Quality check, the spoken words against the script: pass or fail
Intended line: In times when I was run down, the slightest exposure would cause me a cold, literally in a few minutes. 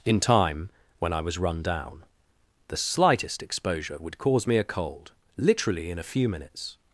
fail